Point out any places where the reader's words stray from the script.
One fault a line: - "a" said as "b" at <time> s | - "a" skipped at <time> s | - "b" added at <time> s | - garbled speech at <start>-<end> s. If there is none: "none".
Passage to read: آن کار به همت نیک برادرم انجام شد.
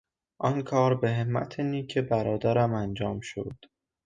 none